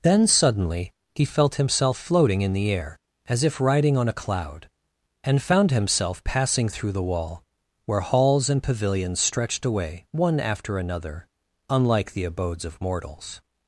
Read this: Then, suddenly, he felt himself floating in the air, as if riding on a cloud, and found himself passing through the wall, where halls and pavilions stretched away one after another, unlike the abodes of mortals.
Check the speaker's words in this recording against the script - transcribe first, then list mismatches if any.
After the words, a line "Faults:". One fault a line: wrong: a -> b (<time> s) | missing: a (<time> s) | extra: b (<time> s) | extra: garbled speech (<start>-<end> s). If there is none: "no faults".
Then, suddenly, he felt himself floating in the air, as if riding on a cloud, and found himself passing through the wall, where halls and pavilions stretched away one after another, unlike the abodes of mortals.
Faults:
no faults